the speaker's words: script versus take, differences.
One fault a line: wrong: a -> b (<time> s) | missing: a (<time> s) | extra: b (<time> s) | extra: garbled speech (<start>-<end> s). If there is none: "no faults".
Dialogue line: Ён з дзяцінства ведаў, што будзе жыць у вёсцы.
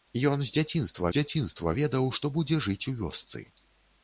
extra: дзяцінства (1.1 s)